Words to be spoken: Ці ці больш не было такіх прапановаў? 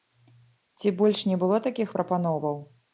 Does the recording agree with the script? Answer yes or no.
no